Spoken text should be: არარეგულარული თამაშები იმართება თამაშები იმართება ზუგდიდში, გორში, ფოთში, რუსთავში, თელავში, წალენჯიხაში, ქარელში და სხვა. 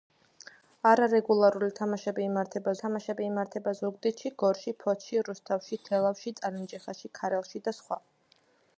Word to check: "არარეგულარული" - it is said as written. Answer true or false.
true